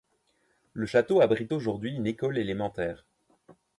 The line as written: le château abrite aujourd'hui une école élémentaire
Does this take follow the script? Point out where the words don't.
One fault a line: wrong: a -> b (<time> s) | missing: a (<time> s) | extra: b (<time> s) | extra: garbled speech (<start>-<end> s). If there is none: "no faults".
no faults